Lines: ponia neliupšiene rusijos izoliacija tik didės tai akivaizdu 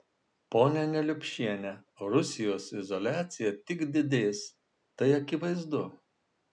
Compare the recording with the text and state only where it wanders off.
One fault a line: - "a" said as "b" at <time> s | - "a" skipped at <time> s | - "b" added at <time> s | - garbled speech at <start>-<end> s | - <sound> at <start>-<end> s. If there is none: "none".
none